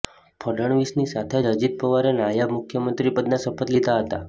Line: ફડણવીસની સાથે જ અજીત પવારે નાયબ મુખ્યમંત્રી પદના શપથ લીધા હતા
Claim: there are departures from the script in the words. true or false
false